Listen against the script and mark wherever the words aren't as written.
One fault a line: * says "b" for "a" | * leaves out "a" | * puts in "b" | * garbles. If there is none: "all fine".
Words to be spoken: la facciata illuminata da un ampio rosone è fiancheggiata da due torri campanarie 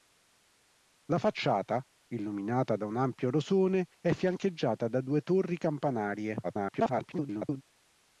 * garbles